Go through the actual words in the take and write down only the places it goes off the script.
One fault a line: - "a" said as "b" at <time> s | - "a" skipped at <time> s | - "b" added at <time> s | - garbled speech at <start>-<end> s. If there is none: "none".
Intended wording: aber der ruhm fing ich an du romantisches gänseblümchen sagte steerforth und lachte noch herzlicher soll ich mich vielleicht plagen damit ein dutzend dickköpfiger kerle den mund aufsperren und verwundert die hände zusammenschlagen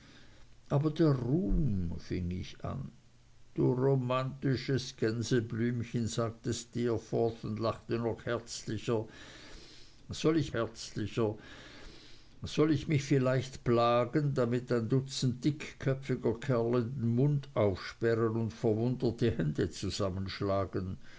- "herzlicher soll ich" added at 10.5 s